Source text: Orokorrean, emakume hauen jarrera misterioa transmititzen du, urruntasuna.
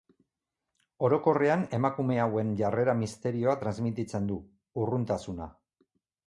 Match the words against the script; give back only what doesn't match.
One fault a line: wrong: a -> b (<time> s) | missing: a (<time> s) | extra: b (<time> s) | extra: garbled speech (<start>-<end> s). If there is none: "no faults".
no faults